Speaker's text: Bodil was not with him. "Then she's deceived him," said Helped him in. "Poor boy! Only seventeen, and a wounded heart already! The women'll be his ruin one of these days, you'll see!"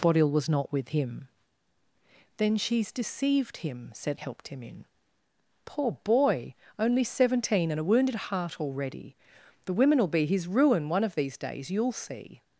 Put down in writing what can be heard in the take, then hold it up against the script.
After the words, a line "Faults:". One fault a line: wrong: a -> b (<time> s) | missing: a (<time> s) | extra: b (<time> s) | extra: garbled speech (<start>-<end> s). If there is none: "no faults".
Bodil was not with him. "Then she's deceived him," said Helped him in. "Poor boy! Only seventeen, and a wounded heart already! The women'll be his ruin one of these days, you'll see!"
Faults:
no faults